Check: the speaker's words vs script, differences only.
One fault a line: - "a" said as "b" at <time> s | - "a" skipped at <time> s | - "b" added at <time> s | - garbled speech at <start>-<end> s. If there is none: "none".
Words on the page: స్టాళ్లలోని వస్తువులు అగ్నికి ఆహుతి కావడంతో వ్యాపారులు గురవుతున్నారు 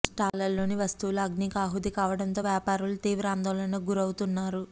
- "తీవ్ర ఆందోళనకు" added at 3.0 s